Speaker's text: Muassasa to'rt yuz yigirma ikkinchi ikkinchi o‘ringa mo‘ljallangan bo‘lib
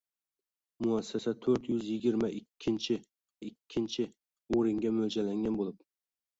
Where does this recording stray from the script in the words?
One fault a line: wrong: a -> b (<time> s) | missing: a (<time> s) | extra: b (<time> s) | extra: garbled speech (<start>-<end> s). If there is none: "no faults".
no faults